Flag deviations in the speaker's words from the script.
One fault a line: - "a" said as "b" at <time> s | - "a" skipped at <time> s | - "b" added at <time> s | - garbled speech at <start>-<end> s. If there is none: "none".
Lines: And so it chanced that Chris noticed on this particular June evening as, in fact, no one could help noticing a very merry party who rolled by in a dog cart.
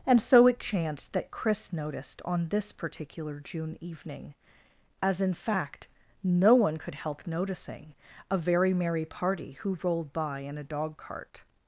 none